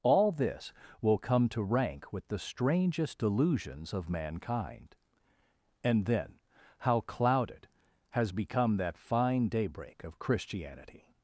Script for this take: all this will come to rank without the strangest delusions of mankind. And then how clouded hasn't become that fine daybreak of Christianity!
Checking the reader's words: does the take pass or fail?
fail